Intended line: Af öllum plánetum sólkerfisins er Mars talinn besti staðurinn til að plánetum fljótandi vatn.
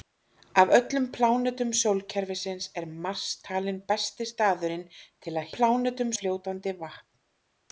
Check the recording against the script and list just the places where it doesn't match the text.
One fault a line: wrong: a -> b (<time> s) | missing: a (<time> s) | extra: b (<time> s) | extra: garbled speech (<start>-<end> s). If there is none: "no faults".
no faults